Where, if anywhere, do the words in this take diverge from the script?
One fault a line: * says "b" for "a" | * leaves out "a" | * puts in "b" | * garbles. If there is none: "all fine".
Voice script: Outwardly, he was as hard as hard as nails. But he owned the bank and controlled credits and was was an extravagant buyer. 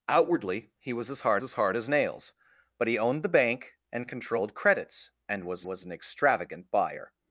all fine